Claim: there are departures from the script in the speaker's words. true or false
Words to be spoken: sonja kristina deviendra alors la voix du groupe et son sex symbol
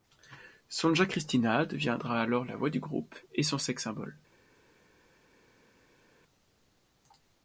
false